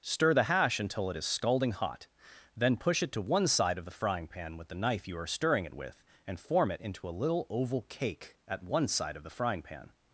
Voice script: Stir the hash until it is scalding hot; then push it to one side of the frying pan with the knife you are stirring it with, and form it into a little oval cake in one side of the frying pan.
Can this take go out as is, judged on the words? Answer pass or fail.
fail